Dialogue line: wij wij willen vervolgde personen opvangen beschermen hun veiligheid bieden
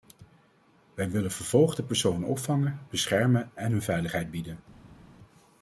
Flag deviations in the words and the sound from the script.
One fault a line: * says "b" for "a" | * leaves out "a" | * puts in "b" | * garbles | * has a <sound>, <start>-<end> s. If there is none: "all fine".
* leaves out "wij"
* puts in "en"